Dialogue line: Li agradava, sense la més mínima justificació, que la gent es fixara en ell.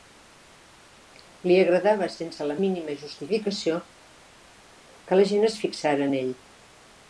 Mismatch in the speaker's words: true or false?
true